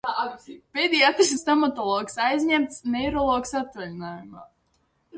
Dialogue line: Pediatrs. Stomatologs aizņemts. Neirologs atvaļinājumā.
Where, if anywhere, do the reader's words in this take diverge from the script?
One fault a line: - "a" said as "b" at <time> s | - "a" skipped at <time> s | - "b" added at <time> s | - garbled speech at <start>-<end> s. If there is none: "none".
none